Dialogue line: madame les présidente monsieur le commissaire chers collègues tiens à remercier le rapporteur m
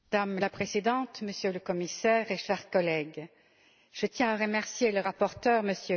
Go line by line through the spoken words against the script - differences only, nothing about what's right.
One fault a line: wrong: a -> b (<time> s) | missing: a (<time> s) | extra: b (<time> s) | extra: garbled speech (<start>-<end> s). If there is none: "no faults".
wrong: les -> la (0.4 s)
extra: je (3.9 s)